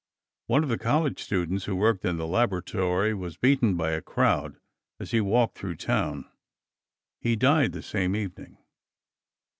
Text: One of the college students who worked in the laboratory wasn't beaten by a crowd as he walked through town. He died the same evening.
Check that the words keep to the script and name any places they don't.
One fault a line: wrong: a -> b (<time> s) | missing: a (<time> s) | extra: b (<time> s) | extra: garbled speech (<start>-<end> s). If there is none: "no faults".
wrong: wasn't -> was (3.1 s)